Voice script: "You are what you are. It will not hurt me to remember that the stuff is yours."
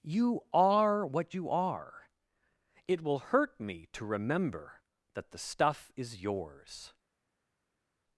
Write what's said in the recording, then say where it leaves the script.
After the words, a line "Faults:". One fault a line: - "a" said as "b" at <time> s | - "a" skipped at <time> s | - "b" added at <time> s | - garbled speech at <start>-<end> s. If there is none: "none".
"You are what you are. It will hurt me to remember that the stuff is yours."
Faults:
- "not" skipped at 3.2 s